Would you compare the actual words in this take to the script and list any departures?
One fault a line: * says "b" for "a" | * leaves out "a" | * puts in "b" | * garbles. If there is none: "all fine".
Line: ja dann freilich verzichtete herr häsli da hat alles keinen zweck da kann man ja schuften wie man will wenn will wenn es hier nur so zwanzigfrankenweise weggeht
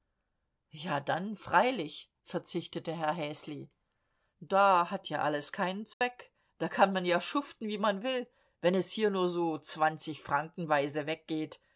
* puts in "ja"
* leaves out "will wenn"